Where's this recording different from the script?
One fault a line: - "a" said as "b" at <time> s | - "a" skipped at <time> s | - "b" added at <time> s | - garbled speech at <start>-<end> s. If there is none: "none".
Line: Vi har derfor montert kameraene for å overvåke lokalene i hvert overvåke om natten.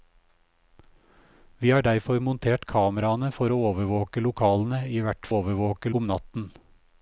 none